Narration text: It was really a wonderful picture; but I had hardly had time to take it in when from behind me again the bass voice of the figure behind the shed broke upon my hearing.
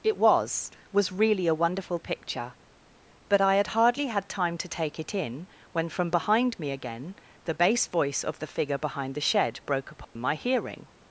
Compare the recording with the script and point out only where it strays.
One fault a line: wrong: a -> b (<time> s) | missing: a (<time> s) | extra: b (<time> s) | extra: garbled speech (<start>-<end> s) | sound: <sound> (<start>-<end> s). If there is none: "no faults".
extra: was (0.9 s)
sound: dropout (10.0-10.2 s)